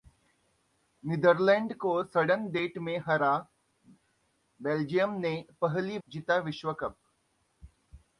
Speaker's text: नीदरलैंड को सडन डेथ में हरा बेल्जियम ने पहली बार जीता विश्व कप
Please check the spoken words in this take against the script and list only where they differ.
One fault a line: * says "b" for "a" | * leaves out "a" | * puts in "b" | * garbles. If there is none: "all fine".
* leaves out "बार"